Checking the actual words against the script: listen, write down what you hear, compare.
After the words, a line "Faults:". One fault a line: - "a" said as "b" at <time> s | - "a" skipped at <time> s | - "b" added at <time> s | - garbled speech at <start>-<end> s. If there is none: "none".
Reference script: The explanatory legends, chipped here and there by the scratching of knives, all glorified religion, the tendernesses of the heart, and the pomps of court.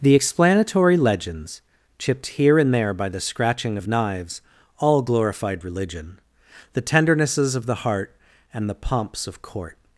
The explanatory legends, chipped here and there by the scratching of knives, all glorified religion, the tendernesses of the heart, and the pomps of court.
Faults:
none